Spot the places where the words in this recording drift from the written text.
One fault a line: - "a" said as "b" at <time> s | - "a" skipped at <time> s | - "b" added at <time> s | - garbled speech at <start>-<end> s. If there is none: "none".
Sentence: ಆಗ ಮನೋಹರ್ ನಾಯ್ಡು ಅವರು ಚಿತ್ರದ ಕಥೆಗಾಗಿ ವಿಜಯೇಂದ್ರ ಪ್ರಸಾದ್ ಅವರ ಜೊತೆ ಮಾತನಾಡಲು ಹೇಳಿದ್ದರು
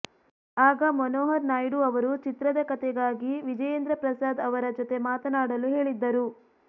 none